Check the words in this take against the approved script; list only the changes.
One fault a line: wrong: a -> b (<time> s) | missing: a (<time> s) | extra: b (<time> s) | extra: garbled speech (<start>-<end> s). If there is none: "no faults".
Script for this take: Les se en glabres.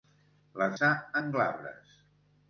no faults